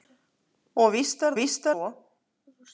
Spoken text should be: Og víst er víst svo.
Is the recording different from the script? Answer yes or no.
no